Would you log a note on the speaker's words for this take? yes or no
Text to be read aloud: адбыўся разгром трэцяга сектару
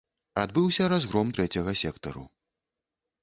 no